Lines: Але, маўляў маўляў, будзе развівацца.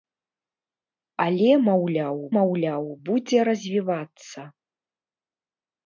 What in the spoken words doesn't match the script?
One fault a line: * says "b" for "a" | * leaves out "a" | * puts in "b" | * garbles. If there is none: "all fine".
all fine